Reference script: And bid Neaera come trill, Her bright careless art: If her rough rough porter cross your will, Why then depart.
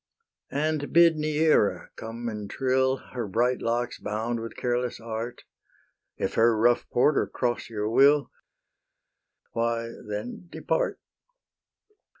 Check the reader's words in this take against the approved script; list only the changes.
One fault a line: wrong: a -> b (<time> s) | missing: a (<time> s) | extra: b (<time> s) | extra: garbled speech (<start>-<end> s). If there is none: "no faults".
extra: and (2.3 s)
extra: locks bound with (3.6 s)
missing: rough (6.9 s)